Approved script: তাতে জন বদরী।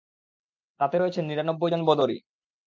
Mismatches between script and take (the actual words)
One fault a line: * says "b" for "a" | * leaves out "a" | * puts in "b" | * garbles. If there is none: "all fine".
* puts in "রয়েছেন নিরানব্বই"